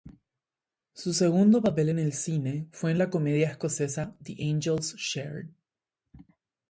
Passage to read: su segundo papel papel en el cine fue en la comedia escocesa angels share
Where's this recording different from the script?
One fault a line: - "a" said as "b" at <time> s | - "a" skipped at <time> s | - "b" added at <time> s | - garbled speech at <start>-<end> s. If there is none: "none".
- "papel" skipped at 1.9 s
- "the" added at 4.2 s